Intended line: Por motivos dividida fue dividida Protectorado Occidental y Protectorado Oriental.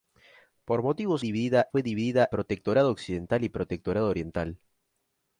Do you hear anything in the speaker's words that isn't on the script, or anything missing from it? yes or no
no